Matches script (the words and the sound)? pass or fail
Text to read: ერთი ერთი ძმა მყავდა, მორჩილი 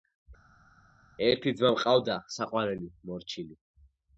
fail